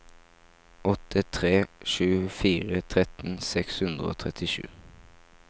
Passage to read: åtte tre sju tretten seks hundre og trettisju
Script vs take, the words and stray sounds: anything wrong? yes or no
yes